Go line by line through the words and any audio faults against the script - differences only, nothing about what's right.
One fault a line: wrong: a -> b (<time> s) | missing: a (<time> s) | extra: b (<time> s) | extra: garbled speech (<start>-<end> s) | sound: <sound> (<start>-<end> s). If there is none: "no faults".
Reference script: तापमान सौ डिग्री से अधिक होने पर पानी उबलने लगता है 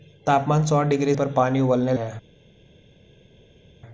missing: से अधिक होने (1.1 s)
missing: लगता (1.9 s)